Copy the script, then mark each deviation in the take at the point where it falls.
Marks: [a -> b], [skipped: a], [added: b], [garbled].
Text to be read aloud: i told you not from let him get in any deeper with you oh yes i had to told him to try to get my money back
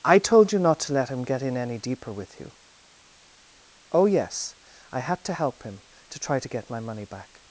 i told you not [from -> to] let him get in any deeper with you oh yes i had to [told -> help] him to try to get my money back